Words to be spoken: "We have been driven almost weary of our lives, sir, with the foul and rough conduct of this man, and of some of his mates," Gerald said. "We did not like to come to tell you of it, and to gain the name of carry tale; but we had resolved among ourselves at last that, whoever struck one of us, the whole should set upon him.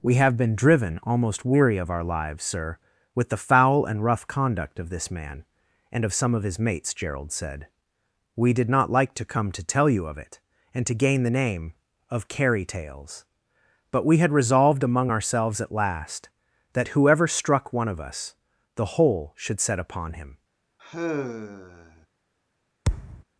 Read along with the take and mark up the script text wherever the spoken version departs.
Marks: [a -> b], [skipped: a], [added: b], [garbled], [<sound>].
"We have been driven almost weary of our lives, sir, with the foul and rough conduct of this man, and of some of his mates," Gerald said. "We did not like to come to tell you of it, and to gain the name of carry [tale; -> tales] but we had resolved among ourselves at last that, whoever struck one of us, the whole should set upon him. [sigh] [thud]